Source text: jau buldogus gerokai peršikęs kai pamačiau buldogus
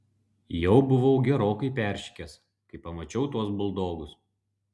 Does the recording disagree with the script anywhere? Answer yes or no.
yes